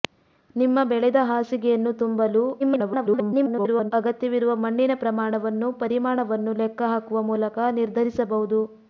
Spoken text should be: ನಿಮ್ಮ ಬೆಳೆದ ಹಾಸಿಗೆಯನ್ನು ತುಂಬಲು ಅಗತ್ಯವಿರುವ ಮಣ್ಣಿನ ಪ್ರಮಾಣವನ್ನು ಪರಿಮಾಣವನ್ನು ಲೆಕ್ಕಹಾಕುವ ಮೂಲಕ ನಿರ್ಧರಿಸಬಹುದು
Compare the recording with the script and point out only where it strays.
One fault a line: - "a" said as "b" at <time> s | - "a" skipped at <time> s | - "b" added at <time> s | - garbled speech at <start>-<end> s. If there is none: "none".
- garbled speech at 2.6-3.9 s